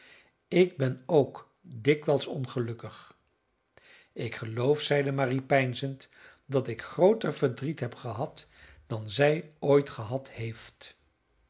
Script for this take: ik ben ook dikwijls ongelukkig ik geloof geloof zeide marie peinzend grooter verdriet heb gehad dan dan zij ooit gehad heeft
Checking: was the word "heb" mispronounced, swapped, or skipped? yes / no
no